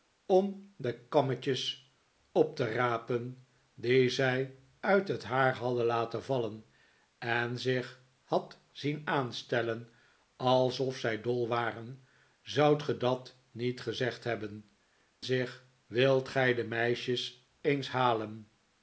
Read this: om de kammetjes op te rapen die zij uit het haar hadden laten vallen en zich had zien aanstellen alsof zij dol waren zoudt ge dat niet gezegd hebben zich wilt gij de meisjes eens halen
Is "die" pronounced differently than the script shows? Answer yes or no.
no